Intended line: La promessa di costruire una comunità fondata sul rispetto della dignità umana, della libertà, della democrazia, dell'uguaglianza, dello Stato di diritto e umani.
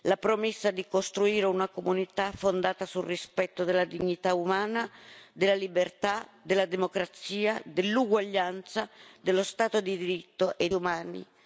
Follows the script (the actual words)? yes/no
yes